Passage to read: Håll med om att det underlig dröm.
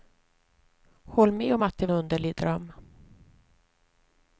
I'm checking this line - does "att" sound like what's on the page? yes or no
yes